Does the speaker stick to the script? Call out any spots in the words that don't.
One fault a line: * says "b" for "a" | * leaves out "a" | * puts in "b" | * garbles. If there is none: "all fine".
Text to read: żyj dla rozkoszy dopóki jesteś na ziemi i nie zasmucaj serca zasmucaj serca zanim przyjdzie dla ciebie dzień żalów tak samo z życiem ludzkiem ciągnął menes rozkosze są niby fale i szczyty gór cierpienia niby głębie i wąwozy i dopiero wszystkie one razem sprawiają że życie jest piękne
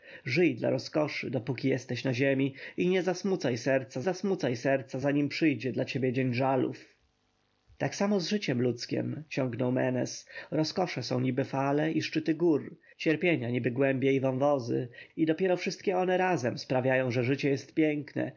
all fine